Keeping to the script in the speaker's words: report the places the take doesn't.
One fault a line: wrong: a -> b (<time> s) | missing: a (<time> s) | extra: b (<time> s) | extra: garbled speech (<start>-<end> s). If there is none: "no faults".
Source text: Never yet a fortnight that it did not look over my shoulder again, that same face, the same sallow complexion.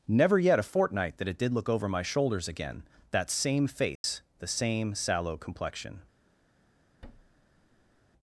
missing: not (1.5 s)
wrong: shoulder -> shoulders (2.0 s)